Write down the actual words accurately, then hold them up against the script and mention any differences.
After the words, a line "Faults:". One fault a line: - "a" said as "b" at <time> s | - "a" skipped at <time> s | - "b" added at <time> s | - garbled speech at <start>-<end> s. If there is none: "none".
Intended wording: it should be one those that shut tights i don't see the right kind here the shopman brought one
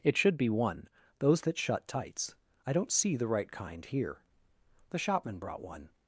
it should be one those that shut tights i don't see the right kind here the shopman brought one
Faults:
none